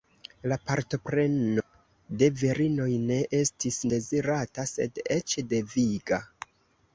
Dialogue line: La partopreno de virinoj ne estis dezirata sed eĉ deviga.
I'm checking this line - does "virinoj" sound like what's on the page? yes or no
yes